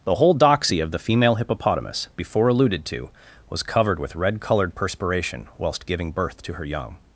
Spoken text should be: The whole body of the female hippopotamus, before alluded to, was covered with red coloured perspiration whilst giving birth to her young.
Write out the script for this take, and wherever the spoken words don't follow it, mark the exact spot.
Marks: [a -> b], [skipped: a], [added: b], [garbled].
The whole [body -> doxy] of the female hippopotamus, before alluded to, was covered with red coloured perspiration whilst giving birth to her young.